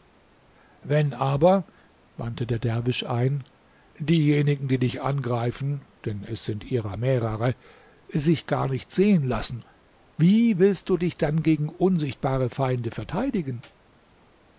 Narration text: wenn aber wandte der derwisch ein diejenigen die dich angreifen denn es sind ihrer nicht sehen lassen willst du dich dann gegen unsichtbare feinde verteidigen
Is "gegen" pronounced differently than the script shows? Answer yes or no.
no